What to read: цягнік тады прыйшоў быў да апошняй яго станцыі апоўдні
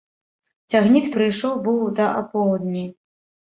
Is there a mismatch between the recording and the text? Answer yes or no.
yes